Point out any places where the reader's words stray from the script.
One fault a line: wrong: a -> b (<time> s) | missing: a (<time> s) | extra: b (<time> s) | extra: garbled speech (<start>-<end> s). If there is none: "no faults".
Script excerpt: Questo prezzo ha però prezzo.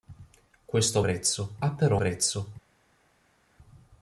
no faults